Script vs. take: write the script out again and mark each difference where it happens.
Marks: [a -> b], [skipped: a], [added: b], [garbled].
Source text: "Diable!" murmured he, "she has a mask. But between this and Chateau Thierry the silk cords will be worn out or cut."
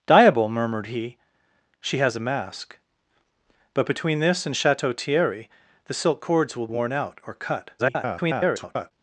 "Diable!" murmured he, "she has a mask. But between this and Chateau Thierry the silk cords will [skipped: be] worn out or cut." [garbled]